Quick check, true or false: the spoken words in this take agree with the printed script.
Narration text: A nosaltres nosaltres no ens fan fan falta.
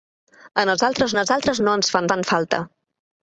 true